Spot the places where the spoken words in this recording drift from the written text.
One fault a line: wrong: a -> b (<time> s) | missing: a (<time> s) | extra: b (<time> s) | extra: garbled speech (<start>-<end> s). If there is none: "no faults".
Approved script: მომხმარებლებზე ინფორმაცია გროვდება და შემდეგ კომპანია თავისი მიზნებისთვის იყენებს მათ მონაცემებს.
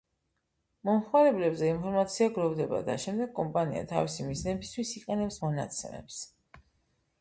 missing: მათ (5.4 s)